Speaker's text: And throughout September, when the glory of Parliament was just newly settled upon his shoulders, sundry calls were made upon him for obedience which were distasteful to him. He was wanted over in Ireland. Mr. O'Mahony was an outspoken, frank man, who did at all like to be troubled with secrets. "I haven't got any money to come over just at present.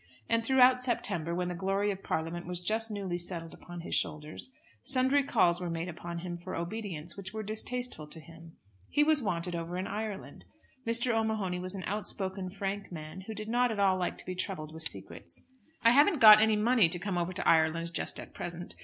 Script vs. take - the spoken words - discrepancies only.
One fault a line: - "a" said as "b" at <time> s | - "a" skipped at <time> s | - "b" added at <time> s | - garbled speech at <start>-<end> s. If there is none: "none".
- "not" added at 13.5 s
- "to Ireland" added at 17.3 s